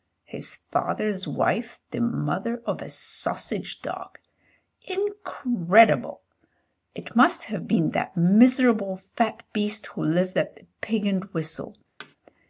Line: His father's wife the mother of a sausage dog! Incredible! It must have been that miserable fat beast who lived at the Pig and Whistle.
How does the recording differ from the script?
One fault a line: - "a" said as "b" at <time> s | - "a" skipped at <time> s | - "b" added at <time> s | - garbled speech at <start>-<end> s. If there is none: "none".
none